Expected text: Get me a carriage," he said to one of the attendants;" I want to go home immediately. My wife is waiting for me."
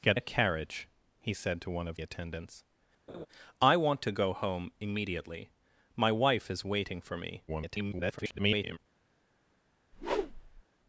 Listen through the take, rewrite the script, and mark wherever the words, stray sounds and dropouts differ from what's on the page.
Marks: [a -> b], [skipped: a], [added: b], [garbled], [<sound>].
Get [skipped: me] a carriage," he said to one of [skipped: the] attendants;" [laugh] I want to go home immediately. My wife is waiting for me." [garbled] [whoosh]